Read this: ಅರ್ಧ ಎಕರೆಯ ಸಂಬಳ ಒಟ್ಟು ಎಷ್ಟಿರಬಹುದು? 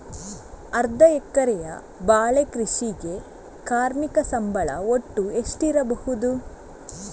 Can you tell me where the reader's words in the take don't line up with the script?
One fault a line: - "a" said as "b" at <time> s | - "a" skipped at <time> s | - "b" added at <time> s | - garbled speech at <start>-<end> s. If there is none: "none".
- "ಬಾಳೆ ಕೃಷಿಗೆ ಕಾರ್ಮಿಕ" added at 2.0 s